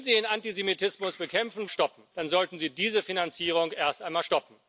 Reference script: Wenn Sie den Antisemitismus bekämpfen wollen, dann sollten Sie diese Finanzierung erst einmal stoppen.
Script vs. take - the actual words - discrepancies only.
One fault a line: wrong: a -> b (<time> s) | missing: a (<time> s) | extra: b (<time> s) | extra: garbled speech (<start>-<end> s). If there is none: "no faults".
wrong: wollen -> stoppen (1.7 s)